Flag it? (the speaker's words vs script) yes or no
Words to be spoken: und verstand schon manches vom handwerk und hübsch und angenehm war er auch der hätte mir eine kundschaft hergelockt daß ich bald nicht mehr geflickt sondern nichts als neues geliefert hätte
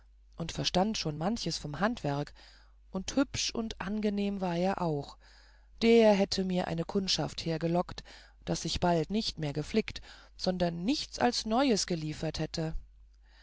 no